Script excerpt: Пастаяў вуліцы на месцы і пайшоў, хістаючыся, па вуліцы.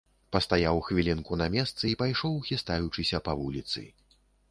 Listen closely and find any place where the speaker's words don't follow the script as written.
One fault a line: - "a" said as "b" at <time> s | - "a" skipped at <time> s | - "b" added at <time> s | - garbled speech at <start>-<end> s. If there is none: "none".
- "вуліцы" said as "хвілінку" at 0.9 s